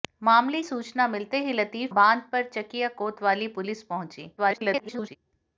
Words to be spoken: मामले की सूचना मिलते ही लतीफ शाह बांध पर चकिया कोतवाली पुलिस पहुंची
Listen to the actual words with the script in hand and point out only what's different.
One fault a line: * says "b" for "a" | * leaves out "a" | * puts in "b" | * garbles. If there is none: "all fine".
* leaves out "की"
* leaves out "शाह"
* garbles